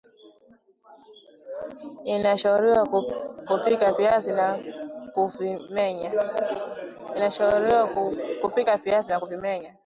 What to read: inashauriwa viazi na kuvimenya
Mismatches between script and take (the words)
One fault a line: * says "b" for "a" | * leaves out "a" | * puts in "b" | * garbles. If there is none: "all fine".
* puts in "kupika"